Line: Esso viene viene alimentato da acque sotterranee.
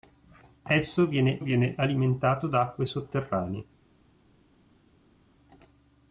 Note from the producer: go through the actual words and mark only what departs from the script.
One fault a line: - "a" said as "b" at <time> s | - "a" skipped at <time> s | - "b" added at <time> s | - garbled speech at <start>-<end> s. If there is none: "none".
none